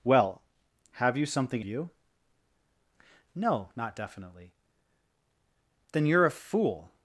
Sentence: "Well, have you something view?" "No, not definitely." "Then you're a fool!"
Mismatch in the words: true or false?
false